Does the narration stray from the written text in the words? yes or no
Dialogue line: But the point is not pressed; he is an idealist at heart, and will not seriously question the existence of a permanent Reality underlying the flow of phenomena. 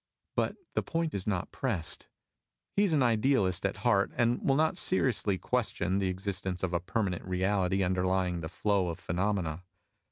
no